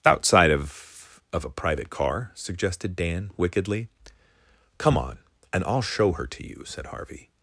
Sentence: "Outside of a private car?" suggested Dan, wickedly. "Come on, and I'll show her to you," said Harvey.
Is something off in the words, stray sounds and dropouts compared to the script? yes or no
yes